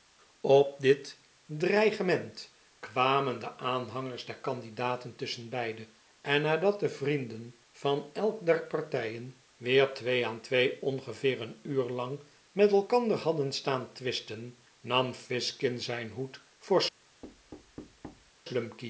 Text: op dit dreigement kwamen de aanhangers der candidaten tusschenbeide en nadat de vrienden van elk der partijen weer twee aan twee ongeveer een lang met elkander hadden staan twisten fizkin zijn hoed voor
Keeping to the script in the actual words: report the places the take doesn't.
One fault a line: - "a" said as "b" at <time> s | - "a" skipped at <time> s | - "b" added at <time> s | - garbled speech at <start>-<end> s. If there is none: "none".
- "uur" added at 11.6 s
- "nam" added at 14.8 s